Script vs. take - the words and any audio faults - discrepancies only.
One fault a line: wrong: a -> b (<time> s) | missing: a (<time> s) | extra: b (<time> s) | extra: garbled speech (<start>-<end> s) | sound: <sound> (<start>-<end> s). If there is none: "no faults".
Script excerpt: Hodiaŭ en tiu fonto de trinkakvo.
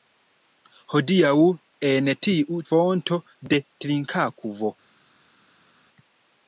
no faults